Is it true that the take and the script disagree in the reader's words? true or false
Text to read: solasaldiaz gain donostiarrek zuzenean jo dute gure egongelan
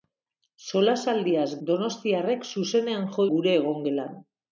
true